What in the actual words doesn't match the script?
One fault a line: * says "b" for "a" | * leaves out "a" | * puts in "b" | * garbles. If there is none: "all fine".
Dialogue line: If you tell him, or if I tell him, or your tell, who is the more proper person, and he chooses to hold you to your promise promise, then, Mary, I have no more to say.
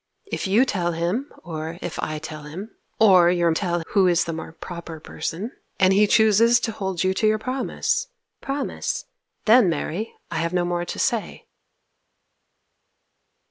all fine